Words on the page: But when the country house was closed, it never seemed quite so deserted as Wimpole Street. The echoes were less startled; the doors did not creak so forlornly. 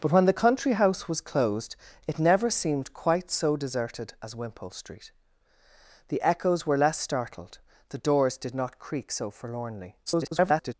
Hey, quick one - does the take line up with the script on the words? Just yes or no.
no